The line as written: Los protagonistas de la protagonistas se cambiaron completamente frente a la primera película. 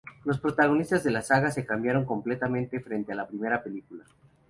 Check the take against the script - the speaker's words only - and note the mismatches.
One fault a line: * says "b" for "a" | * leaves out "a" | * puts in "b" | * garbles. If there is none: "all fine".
* says "saga" for "protagonistas"